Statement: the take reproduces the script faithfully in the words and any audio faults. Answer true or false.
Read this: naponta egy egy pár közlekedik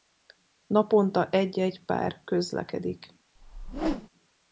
false